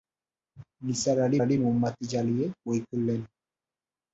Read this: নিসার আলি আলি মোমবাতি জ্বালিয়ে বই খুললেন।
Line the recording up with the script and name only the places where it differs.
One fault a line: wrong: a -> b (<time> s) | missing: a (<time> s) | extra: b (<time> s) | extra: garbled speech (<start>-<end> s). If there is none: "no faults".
no faults